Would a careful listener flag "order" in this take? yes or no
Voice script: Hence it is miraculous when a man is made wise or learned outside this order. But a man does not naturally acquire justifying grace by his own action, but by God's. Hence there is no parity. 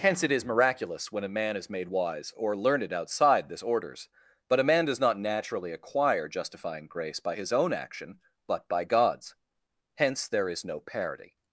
yes